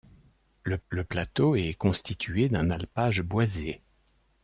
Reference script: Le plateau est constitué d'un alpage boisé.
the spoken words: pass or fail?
fail